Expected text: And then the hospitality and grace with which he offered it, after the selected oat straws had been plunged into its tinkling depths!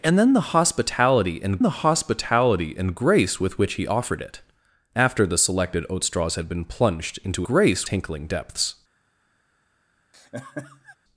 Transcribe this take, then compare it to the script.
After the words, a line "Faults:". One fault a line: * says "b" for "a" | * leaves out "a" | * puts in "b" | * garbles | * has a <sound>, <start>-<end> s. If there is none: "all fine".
And then the hospitality and the hospitality and grace with which he offered it, after the selected oat straws had been plunged into grace tinkling depths!
Faults:
* puts in "the hospitality and"
* says "grace" for "its"
* has a laugh, 10.1-11.0 s